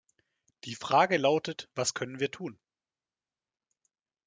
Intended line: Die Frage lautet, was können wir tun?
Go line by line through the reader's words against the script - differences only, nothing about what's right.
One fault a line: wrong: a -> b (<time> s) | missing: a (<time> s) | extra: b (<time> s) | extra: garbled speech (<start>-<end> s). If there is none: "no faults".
no faults